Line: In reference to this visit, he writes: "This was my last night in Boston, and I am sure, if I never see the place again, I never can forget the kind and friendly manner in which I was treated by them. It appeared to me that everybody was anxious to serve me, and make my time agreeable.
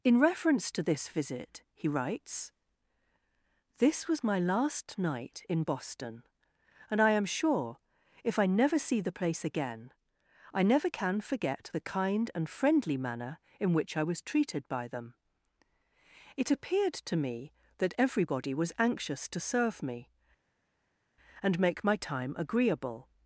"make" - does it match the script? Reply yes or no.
yes